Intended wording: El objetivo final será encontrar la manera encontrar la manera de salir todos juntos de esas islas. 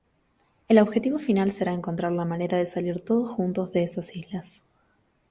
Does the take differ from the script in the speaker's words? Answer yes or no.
yes